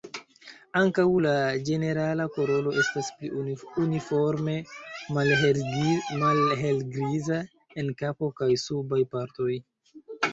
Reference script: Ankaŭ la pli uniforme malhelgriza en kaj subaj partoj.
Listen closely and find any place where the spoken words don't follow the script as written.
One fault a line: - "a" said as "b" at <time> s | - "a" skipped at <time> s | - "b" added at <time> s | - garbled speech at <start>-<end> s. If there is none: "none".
- "ĝenerala koloro estas" added at 1.7 s
- "kapo" added at 8.0 s